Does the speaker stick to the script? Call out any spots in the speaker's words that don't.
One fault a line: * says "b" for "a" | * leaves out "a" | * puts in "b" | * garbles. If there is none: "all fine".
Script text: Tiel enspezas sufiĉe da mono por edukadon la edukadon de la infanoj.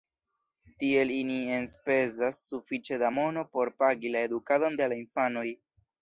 * puts in "ili"
* says "pagi" for "edukadon"